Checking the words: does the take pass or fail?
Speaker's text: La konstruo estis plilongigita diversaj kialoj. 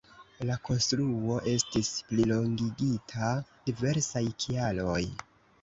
pass